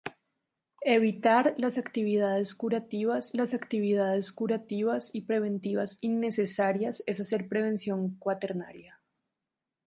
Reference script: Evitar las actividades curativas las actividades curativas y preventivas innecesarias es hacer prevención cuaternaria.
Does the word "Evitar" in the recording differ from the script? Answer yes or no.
no